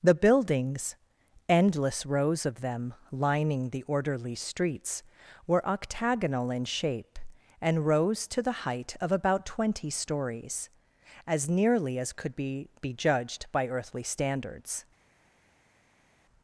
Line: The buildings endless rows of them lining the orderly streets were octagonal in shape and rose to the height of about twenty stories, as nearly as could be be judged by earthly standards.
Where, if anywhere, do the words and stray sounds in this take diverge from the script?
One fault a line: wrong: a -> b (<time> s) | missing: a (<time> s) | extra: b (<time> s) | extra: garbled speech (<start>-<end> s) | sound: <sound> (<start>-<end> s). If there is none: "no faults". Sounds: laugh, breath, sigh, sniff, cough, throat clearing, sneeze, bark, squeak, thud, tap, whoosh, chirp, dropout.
no faults